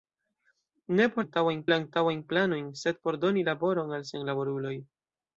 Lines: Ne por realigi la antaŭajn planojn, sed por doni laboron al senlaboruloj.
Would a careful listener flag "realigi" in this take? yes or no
yes